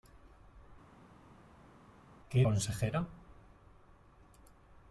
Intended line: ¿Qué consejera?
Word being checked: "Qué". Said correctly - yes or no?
yes